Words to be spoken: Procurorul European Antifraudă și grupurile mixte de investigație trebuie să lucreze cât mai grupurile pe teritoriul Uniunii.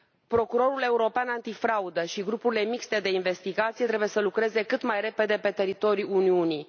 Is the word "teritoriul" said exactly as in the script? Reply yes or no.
yes